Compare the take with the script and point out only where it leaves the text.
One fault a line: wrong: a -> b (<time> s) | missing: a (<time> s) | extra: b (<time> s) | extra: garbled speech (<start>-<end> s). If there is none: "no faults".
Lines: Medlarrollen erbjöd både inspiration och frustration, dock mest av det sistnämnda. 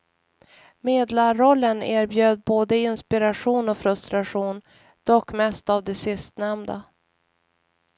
no faults